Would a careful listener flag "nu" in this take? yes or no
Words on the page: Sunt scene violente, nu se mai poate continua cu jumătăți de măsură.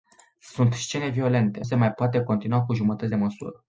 yes